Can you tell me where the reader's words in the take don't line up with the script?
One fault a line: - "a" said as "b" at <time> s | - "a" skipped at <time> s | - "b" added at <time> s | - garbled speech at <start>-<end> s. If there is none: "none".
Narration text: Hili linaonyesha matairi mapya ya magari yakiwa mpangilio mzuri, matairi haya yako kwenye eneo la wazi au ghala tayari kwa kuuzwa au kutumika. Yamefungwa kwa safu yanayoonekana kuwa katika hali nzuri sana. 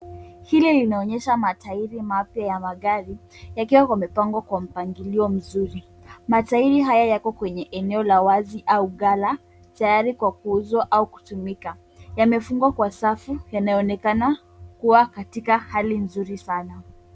- "yamepangwa kwa" added at 3.9 s